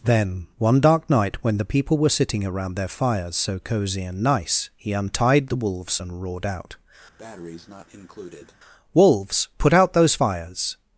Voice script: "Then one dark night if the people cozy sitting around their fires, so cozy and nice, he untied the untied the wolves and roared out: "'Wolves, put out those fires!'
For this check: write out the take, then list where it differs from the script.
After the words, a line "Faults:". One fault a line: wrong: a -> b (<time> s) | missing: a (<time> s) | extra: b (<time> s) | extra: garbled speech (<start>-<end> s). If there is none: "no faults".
"Then one dark night when the people were sitting around their fires, so cozy and nice, he untied the wolves and roared out: "'Wolves, put out those fires!'
Faults:
wrong: if -> when (1.4 s)
wrong: cozy -> were (1.9 s)
missing: untied the (5.6 s)